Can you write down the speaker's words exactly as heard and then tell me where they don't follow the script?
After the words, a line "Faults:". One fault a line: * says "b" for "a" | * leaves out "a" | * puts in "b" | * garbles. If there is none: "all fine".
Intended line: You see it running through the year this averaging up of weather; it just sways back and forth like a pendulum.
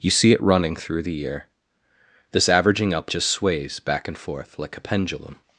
You see it running through the year this averaging up just sways back and forth like a pendulum.
Faults:
* leaves out "of weather it"